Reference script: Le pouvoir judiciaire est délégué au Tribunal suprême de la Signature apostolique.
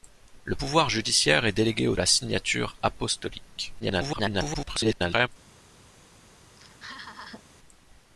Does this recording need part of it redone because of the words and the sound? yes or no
yes